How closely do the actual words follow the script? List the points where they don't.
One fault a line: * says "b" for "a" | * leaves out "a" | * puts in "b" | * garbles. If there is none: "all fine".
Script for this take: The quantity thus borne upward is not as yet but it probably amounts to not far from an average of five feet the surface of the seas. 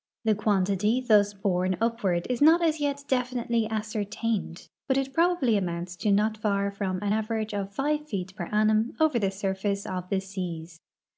* puts in "definitely ascertained"
* puts in "per annum over"